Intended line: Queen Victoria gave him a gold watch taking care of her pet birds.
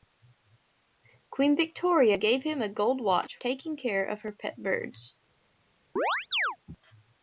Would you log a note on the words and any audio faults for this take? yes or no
yes